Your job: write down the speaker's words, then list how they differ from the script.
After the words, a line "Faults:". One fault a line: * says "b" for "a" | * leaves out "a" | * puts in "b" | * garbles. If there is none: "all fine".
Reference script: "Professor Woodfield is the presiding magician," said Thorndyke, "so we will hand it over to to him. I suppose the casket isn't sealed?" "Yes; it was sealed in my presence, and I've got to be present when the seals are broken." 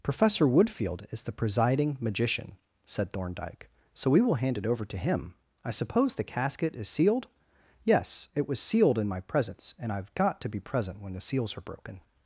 "Professor Woodfield is the presiding magician," said Thorndyke, "so we will hand it over to him. I suppose the casket is sealed?" "Yes; it was sealed in my presence, and I've got to be present when the seals are broken."
Faults:
* leaves out "to"
* says "is" for "isn't"